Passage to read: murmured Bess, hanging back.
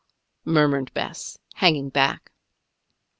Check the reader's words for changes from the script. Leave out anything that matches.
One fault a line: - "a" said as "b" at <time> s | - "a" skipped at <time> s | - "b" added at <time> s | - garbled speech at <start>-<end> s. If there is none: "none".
none